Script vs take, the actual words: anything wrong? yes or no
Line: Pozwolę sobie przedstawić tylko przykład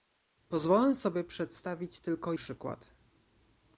no